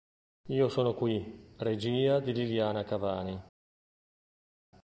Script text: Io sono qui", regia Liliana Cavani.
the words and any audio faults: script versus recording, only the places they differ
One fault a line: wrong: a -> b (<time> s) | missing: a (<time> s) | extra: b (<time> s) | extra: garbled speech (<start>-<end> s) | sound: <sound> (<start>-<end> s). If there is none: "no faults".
extra: di (2.2 s)